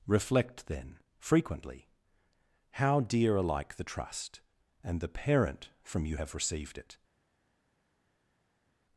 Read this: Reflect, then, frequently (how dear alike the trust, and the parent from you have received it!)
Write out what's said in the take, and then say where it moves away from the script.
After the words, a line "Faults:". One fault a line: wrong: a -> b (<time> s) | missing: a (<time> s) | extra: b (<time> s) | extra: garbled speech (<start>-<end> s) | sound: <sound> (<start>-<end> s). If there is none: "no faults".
Reflect, then, frequently (how dear alike the trust, and the parent from you have received it!)
Faults:
no faults